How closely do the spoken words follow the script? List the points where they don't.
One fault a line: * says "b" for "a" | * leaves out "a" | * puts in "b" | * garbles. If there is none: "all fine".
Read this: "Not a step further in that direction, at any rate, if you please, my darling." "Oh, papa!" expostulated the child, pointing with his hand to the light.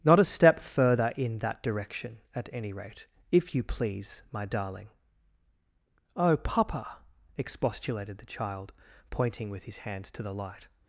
all fine